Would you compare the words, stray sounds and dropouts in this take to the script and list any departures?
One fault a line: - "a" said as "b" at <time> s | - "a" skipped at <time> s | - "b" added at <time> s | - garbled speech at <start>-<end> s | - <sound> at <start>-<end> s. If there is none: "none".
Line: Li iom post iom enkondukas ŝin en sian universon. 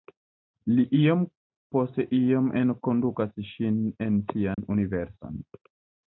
- dropout at 4.5-4.6 s